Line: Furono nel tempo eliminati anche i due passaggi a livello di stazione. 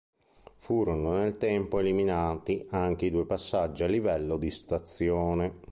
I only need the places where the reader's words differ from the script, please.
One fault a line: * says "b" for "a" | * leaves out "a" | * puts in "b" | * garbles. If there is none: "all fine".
all fine